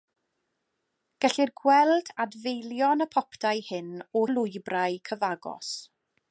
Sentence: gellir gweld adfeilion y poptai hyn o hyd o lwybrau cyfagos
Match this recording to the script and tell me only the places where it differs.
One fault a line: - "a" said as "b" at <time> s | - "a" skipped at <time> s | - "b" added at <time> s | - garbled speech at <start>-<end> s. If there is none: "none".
- "hyd" skipped at 4.2 s